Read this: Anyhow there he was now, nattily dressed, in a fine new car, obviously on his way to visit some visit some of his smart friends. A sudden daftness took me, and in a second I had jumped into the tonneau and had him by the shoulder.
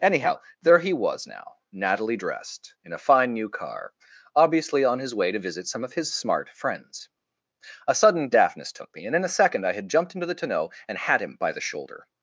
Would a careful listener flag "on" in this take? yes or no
no